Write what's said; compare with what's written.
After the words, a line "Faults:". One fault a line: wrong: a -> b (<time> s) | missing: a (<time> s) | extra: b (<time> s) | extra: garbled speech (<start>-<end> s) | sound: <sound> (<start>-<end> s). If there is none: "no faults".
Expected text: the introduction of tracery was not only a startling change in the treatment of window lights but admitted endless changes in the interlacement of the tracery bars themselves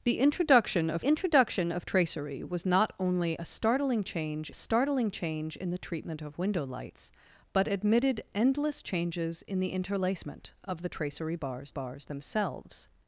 the introduction of introduction of tracery was not only a startling change startling change in the treatment of window lights but admitted endless changes in the interlacement of the tracery bars bars themselves
Faults:
extra: introduction of (1.0 s)
extra: startling change (4.5 s)
extra: bars (11.7 s)